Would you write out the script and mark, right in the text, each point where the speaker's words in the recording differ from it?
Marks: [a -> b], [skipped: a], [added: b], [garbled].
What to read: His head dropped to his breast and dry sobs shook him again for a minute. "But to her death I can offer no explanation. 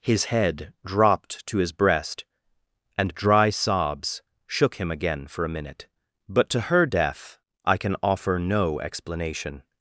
His head dropped to his breast and dry sobs shook him again for a minute. "But to her death I can offer no explanation.